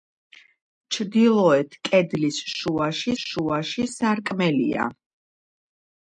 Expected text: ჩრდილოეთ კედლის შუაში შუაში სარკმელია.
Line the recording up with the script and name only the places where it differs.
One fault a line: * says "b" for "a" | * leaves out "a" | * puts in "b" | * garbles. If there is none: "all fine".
all fine